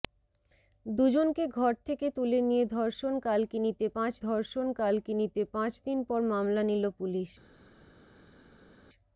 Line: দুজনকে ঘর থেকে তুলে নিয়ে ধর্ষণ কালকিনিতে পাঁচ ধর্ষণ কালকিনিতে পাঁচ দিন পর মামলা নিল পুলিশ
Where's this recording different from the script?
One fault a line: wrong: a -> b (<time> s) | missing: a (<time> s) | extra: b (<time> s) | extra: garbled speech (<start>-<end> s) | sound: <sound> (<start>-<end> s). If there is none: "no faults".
no faults